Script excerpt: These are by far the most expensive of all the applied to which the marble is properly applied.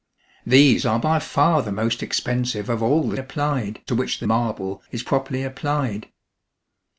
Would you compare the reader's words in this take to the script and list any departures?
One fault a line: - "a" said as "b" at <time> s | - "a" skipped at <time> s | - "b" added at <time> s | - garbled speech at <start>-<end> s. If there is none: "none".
none